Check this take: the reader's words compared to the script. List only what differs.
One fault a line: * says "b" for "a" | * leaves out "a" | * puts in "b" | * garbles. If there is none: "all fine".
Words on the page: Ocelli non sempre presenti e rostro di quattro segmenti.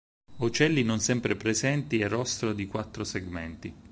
all fine